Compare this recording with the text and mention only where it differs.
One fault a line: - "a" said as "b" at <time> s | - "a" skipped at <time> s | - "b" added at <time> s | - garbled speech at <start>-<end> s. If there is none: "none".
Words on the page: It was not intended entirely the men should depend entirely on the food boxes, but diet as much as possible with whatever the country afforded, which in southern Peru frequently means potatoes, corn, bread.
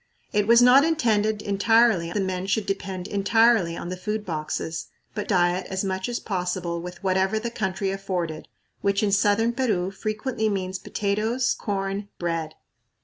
none